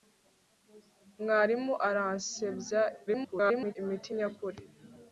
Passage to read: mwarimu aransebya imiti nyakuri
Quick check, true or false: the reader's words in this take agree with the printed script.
false